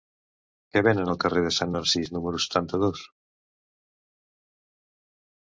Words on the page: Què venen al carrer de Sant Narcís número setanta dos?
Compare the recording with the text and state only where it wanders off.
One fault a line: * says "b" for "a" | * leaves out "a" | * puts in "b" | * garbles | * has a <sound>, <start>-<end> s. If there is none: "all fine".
all fine